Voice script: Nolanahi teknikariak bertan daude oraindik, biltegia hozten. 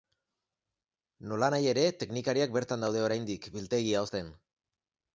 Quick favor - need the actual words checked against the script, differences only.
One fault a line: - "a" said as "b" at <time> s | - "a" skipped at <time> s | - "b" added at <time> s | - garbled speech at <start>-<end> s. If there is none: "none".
- "ere" added at 1.8 s